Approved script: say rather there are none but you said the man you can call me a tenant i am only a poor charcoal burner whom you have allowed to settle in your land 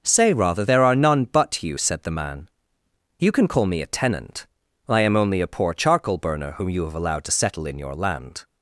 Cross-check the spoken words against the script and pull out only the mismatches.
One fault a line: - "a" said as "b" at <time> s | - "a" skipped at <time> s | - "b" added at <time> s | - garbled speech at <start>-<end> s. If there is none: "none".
none